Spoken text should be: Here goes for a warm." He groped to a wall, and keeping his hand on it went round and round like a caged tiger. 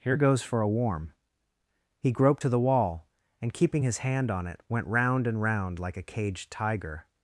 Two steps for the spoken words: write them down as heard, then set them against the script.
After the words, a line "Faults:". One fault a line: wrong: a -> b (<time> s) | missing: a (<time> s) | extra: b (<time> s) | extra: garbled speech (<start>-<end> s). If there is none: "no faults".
Here goes for a warm." He groped to the wall, and keeping his hand on it went round and round like a caged tiger.
Faults:
wrong: a -> the (2.5 s)